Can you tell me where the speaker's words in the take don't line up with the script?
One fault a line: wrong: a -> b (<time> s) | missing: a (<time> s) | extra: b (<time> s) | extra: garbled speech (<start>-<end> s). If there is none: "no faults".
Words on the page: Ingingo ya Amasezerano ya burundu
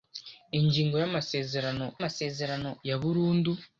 extra: Amasezerano (2.0 s)